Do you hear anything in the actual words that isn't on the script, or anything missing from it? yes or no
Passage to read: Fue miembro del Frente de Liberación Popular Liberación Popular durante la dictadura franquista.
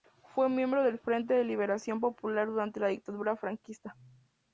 yes